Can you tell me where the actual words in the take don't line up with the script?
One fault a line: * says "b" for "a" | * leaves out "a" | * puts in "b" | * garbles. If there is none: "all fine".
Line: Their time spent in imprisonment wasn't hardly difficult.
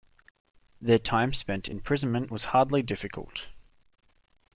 * says "was" for "wasn't"